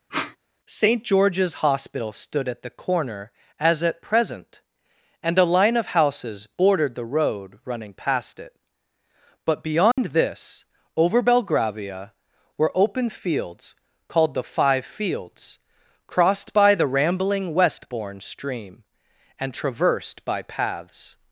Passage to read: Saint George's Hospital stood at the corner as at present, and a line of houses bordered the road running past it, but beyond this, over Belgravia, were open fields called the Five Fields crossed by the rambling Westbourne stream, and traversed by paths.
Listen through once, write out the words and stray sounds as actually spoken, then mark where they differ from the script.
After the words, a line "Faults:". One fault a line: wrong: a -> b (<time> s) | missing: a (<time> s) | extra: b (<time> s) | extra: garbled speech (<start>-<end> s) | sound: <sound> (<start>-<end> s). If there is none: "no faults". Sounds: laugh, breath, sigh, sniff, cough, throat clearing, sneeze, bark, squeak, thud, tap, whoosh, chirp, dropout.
Saint George's Hospital stood at the corner as at present, and a line of houses bordered the road running past it, but beyond this, over Belgravia, were open fields called the Five Fields crossed by the rambling Westbourne stream, and traversed by paths.
Faults:
sound: sniff (0.1-0.4 s)
sound: dropout (9.9-10.0 s)